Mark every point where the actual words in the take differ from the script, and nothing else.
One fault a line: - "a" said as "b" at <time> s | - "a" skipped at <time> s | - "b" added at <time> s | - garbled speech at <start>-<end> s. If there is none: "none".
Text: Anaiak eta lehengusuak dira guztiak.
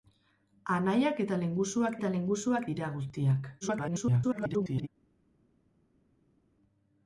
- "eta lehengusuak" added at 2.0 s
- garbled speech at 3.6-4.9 s